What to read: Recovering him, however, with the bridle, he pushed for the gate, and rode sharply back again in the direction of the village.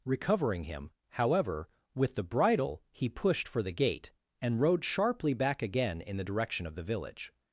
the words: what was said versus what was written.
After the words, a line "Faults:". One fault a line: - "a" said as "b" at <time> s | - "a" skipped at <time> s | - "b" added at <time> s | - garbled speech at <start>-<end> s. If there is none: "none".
Recovering him, however, with the bridle, he pushed for the gate, and rode sharply back again in the direction of the village.
Faults:
none